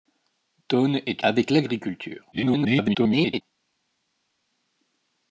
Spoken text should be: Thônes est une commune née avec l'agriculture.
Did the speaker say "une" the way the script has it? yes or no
no